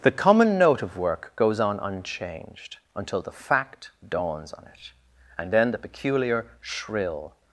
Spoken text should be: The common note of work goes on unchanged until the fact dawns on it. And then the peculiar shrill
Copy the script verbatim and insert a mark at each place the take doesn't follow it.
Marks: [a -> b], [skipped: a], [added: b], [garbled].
The common note of work goes on unchanged until the fact dawns on it. And then the peculiar shrill